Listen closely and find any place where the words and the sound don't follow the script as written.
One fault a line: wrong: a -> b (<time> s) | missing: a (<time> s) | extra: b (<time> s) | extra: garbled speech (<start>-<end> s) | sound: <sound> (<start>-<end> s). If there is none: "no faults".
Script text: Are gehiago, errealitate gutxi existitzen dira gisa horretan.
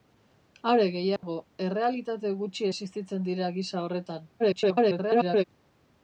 sound: dropout (1.2-1.2 s)
extra: garbled speech (4.4-5.4 s)